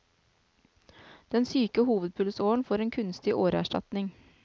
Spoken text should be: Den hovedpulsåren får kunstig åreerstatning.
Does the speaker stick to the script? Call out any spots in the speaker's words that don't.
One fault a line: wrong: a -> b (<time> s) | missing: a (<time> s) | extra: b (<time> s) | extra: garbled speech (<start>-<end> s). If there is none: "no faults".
extra: syke (1.4 s)
extra: en (2.8 s)